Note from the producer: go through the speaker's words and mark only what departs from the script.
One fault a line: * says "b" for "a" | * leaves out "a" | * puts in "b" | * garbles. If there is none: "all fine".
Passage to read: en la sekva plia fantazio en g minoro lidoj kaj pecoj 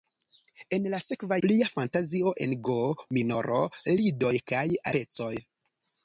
all fine